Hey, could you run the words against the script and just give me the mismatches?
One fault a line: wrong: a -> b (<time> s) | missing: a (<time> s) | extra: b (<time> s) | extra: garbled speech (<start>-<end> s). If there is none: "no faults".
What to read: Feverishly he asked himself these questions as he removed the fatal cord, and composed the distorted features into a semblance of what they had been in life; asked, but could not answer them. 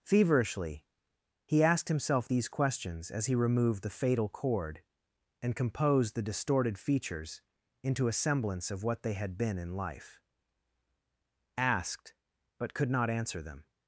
no faults